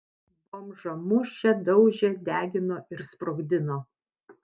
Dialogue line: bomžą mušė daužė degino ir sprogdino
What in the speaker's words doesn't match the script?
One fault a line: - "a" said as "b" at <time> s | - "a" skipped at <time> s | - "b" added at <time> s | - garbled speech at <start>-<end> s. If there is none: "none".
none